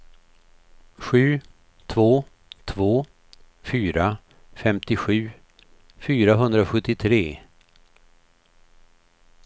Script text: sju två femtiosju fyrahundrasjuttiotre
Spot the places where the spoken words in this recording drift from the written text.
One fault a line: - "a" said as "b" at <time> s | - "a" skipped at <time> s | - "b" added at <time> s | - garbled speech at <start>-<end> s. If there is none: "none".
- "två fyra" added at 2.6 s